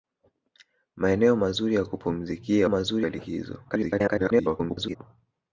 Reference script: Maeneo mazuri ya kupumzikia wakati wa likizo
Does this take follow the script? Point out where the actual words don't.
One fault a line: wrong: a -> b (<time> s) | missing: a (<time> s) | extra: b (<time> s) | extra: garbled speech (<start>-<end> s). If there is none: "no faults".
wrong: wakati -> mazuri (2.7 s)
extra: garbled speech (3.7-5.0 s)